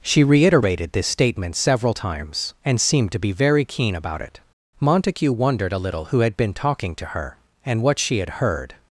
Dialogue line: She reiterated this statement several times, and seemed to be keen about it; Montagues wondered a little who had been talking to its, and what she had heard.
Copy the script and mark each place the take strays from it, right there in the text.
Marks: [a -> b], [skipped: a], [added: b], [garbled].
She reiterated this statement several times, and seemed to be [added: very] keen about it; [Montagues -> Montague] wondered a little who had been talking to [its, -> her] and what she had heard.